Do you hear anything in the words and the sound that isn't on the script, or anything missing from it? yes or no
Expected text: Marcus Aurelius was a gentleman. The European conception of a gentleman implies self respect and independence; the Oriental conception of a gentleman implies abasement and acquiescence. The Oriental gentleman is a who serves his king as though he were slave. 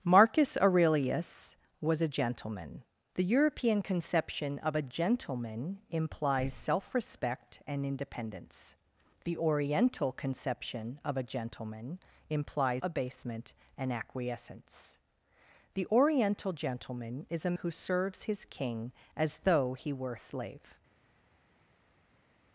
no